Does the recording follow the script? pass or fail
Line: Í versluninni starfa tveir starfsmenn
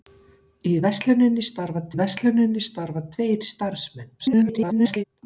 fail